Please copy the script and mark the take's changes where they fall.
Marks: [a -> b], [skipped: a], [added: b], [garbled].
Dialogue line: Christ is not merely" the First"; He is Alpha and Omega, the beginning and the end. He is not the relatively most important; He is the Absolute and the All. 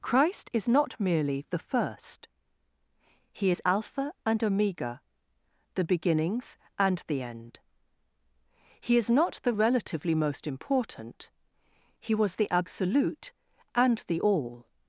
Christ is not merely" the First"; He is Alpha and Omega, the [beginning -> beginnings] and the end. He is not the relatively most important; He [is -> was] the Absolute and the All.